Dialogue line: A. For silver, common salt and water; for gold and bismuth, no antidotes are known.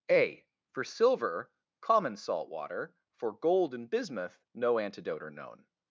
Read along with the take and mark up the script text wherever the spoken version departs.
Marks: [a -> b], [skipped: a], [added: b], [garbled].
A. For silver, common salt [skipped: and] water; for gold and bismuth, no [antidotes -> antidote] are known.